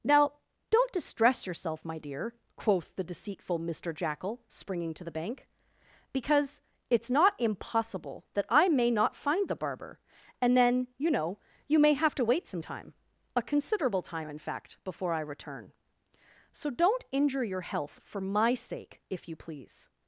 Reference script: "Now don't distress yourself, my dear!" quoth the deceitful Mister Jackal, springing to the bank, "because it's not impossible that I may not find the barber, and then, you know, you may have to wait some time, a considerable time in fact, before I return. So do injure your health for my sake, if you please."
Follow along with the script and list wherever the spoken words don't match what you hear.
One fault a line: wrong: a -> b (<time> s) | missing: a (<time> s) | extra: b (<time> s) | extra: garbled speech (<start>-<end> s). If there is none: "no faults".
wrong: do -> don't (16.7 s)